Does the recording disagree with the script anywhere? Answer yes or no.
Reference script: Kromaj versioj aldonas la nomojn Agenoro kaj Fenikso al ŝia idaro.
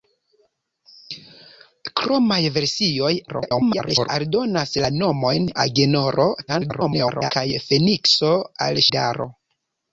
yes